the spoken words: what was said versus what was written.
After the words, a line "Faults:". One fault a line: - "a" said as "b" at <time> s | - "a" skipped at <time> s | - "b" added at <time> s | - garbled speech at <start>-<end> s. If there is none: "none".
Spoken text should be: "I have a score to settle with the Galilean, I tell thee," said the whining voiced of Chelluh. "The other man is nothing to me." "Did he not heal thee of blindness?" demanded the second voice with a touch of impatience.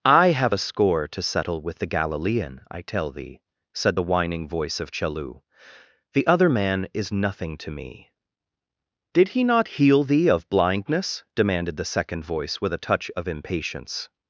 "I have a score to settle with the Galilean, I tell thee," said the whining voice of Chelluh. "The other man is nothing to me." "Did he not heal thee of blindness?" demanded the second voice with a touch of impatience.
Faults:
- "voiced" said as "voice" at 4.5 s